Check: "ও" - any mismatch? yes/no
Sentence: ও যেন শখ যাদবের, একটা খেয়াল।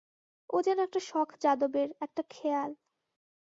no